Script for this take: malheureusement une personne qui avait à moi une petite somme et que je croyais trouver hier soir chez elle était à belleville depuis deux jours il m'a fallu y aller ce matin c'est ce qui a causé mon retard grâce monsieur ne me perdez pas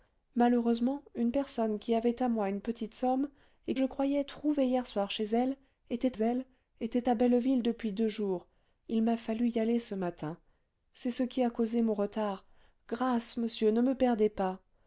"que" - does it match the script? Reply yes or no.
no